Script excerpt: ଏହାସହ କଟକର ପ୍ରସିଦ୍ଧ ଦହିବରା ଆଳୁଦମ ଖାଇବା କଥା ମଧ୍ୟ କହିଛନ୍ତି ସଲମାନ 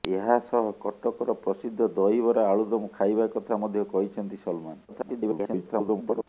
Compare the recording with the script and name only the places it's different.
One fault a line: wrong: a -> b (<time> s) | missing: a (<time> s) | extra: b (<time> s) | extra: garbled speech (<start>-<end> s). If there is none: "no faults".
extra: garbled speech (4.9-6.2 s)